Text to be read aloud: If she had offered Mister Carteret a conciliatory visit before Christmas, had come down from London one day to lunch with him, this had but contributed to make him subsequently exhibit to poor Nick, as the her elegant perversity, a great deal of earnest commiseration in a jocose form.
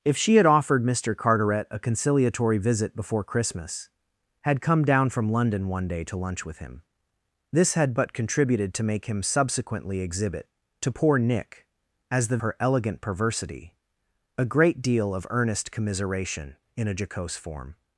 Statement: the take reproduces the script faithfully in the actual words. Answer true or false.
true